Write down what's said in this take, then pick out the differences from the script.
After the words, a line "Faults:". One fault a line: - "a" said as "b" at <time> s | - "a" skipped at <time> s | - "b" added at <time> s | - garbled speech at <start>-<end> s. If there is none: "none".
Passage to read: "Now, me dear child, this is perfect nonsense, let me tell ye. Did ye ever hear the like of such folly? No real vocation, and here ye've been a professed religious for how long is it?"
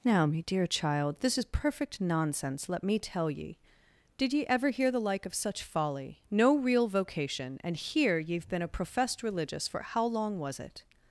"Now, me dear child, this is perfect nonsense, let me tell ye. Did ye ever hear the like of such folly? No real vocation, and here ye've been a professed religious for how long was it?"
Faults:
- "is" said as "was" at 10.4 s